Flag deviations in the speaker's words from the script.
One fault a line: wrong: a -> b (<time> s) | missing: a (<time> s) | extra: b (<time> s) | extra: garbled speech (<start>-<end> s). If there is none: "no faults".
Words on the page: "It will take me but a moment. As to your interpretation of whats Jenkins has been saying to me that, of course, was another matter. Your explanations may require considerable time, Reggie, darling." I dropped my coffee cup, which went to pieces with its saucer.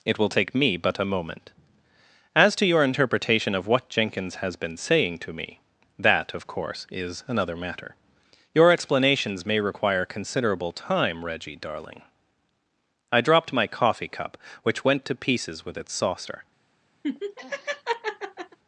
wrong: whats -> what (3.7 s)
wrong: was -> is (6.9 s)